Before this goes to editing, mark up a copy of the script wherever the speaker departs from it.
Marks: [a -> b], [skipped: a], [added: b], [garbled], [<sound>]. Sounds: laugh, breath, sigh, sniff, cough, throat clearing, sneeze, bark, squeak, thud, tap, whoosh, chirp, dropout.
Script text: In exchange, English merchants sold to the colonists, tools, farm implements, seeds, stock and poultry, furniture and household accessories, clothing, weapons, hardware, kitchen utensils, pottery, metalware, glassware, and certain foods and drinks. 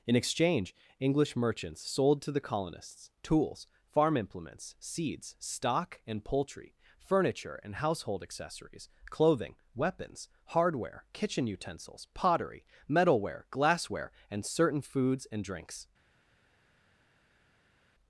In exchange, English merchants sold to the colonists, tools, farm implements, seeds, stock and poultry, furniture and household accessories, clothing, weapons, hardware, kitchen utensils, pottery, metalware, glassware, and certain foods and drinks.